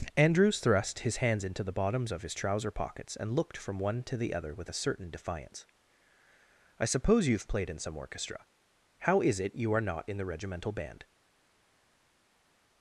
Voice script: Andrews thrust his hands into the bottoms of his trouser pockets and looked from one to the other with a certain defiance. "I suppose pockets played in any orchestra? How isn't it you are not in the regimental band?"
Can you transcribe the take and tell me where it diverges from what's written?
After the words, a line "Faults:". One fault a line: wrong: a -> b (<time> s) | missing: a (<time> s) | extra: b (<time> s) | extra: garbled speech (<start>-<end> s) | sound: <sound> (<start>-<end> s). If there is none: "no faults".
Andrews thrust his hands into the bottoms of his trouser pockets and looked from one to the other with a certain defiance. "I suppose you've played in some orchestra? How is it you are not in the regimental band?"
Faults:
wrong: pockets -> you've (7.3 s)
wrong: any -> some (7.8 s)
wrong: isn't -> is (9.2 s)